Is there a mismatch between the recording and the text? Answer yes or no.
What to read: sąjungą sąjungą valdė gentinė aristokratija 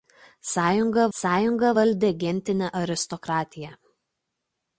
no